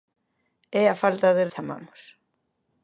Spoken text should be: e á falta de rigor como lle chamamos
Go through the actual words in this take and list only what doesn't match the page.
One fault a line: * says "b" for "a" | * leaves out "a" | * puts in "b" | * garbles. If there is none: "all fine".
* leaves out "rigor como lle"